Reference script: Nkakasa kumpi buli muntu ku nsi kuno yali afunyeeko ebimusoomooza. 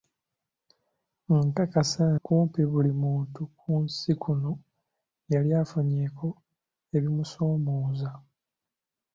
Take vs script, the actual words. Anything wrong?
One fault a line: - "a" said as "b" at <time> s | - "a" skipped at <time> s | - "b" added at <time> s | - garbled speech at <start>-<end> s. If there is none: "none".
none